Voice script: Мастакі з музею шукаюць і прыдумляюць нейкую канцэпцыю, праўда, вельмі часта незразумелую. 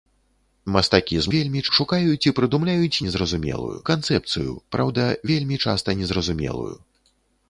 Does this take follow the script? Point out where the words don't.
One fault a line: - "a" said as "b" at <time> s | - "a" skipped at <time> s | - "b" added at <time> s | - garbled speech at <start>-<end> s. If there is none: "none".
- "музею" said as "вельмі" at 1.4 s
- "нейкую" said as "незразумелую" at 3.1 s